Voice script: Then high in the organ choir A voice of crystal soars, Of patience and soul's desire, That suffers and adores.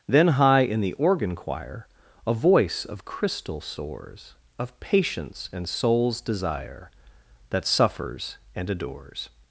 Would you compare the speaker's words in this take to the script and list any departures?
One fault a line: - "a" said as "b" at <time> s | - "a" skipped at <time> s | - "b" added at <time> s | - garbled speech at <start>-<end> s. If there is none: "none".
none